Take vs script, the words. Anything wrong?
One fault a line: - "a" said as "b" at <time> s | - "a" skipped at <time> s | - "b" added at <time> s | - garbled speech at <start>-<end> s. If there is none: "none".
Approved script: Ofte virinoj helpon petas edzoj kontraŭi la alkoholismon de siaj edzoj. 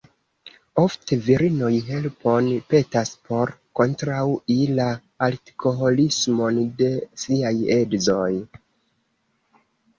- "edzoj" said as "por" at 3.3 s